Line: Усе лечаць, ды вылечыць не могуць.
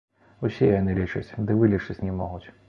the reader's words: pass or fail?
fail